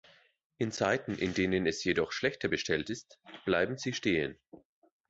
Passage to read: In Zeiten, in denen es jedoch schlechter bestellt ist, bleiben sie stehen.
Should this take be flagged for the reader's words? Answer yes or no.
no